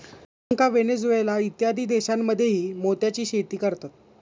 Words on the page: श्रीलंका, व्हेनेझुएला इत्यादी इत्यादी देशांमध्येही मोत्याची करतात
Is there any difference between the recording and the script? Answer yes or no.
yes